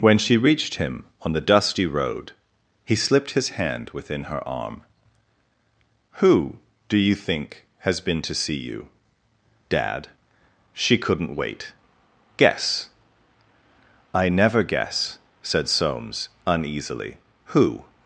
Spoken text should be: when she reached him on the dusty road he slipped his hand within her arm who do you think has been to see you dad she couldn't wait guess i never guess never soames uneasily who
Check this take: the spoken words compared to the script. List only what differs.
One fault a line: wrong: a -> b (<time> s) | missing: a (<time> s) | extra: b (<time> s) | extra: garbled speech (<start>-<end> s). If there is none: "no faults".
wrong: never -> said (15.4 s)